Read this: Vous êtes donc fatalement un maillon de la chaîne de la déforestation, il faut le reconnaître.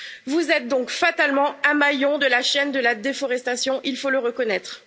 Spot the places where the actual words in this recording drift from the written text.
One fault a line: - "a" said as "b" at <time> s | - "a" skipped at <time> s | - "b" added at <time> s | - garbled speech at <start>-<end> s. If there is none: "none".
none